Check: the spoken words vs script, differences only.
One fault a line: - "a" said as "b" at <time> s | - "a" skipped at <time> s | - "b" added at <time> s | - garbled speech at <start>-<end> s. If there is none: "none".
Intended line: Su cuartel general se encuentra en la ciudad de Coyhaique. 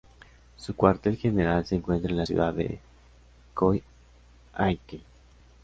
none